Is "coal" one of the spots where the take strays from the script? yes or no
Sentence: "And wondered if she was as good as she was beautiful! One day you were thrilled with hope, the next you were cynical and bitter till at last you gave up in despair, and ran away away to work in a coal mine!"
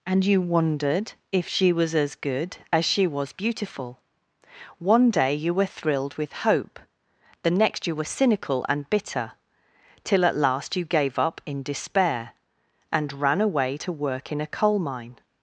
no